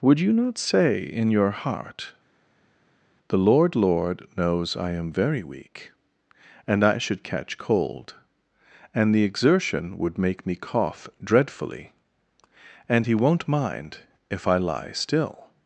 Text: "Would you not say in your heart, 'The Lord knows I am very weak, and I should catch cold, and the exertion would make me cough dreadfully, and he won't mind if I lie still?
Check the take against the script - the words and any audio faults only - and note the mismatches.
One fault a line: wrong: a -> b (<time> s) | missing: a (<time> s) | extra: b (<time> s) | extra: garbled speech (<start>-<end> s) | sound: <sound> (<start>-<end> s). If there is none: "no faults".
extra: Lord (3.8 s)